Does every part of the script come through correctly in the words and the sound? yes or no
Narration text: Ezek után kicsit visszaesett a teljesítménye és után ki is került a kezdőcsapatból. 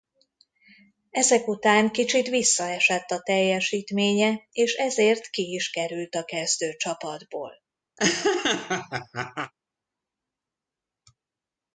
no